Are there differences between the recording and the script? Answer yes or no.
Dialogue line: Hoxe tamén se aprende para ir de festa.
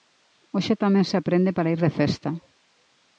no